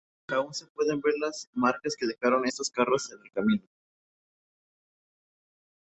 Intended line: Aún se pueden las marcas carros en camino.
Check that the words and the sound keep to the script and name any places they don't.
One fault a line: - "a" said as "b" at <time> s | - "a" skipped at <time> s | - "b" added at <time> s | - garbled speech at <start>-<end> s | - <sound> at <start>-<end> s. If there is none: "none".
- "ver" added at 1.0 s
- "que dejaron estos" added at 1.9 s
- "el" added at 3.2 s